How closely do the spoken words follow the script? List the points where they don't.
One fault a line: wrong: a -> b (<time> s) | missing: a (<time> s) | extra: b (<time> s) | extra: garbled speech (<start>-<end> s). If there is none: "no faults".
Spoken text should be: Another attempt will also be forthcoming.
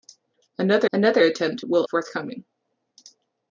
extra: another (0.9 s)
missing: also be (1.8 s)